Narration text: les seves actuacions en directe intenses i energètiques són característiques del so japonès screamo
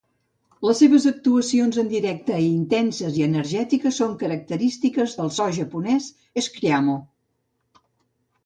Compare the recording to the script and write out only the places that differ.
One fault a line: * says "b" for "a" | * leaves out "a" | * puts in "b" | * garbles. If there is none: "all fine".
all fine